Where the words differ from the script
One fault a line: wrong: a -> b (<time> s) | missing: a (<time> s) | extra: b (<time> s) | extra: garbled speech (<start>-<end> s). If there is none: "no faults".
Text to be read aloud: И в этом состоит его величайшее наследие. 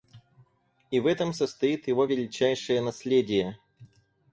no faults